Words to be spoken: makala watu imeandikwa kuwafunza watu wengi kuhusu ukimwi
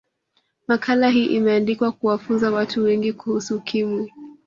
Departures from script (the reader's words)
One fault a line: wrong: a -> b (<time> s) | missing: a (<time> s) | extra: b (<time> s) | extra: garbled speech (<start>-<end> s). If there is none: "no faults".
wrong: watu -> hii (1.1 s)